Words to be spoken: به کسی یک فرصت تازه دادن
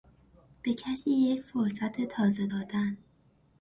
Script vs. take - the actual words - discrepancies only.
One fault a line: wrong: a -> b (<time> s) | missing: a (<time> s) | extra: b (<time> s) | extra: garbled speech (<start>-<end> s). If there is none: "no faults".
no faults